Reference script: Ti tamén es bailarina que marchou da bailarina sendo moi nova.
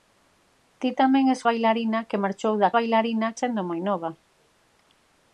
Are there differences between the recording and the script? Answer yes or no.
no